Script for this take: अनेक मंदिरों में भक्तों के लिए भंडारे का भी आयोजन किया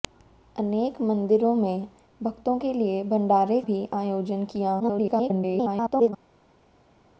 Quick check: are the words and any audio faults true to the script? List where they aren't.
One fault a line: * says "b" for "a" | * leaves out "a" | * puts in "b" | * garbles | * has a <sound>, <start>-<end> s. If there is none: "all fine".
* leaves out "का"
* garbles